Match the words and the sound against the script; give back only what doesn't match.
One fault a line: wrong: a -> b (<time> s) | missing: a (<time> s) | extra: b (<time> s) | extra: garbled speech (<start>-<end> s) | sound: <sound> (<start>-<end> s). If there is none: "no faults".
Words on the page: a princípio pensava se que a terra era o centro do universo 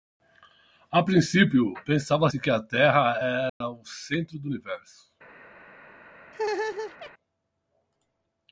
sound: dropout (3.5-3.6 s)
sound: laugh (6.3-7.1 s)